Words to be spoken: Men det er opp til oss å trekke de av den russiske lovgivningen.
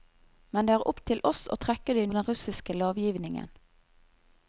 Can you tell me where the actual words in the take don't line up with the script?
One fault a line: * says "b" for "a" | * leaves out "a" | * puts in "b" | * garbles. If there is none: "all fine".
all fine